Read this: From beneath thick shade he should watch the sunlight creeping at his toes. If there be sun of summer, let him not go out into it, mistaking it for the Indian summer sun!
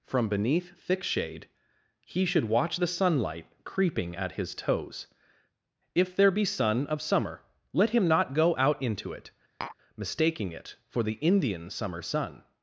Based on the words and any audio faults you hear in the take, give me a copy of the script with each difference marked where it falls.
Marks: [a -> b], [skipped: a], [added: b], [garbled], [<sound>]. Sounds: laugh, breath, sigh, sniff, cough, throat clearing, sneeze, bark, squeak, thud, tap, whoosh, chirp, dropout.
From beneath thick shade he should watch the sunlight creeping at his toes. If there be sun of summer, let him not go out into it, [tap] mistaking it for the Indian summer sun!